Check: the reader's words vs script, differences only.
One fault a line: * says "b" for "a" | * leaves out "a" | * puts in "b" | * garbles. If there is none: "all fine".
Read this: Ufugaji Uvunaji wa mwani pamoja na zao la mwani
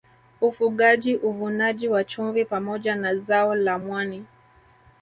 * says "chumvi" for "mwani"